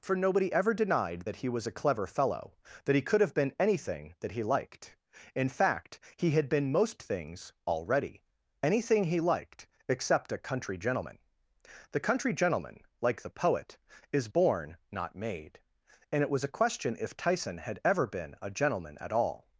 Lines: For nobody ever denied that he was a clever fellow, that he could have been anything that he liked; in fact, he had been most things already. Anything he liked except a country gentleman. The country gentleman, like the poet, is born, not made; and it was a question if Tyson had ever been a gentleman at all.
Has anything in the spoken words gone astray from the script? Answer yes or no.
no